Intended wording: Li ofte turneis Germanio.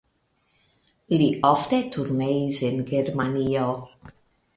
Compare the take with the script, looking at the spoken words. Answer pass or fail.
fail